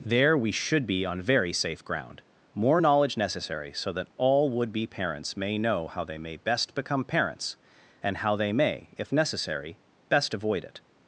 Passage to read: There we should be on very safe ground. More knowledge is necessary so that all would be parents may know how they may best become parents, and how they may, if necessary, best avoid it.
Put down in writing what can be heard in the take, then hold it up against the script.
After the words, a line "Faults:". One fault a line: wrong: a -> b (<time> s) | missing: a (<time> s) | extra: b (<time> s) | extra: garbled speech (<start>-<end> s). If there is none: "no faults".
There we should be on very safe ground. More knowledge necessary so that all would be parents may know how they may best become parents, and how they may, if necessary, best avoid it.
Faults:
missing: is (3.2 s)